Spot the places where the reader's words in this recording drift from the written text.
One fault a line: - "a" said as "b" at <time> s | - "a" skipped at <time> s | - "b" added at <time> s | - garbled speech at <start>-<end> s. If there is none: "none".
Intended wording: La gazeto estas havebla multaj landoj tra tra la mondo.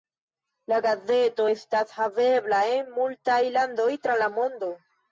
- "en" added at 2.8 s
- "tra" skipped at 4.2 s